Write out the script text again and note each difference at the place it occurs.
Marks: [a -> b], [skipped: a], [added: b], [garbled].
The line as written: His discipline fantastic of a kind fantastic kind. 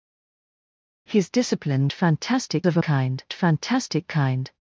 His discipline fantastic of a kind fantastic kind.